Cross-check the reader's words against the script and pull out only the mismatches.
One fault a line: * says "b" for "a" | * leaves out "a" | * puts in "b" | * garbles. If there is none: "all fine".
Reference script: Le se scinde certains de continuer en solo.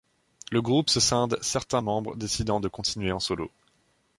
* puts in "groupe"
* puts in "membres décidant"